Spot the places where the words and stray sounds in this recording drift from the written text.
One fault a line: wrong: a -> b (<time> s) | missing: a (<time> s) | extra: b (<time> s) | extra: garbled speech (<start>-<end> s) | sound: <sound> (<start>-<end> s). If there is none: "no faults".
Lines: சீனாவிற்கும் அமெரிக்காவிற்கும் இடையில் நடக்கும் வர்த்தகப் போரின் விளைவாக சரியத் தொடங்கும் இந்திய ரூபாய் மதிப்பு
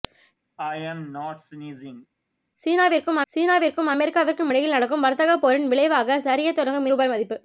sound: sneeze (0.6-2.1 s)
extra: சீனாவிற்கும் (3.3 s)
missing: இந்திய (6.9 s)